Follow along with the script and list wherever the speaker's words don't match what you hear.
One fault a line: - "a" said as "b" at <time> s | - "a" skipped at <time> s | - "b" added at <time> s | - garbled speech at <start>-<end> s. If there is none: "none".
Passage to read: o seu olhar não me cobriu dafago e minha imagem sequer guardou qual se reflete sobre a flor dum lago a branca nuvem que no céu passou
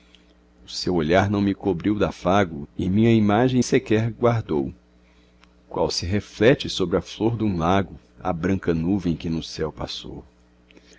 none